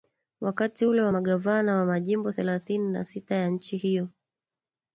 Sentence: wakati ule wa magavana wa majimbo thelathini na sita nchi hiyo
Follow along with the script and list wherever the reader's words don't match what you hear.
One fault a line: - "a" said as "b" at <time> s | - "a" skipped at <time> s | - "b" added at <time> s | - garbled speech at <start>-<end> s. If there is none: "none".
- "ya" added at 3.4 s